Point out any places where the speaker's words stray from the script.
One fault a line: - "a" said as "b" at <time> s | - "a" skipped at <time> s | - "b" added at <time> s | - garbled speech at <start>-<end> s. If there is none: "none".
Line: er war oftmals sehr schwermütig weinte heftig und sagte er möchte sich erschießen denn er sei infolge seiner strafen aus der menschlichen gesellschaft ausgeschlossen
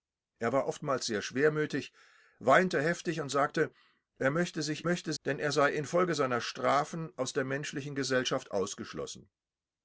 - "erschießen" said as "möchte" at 4.8 s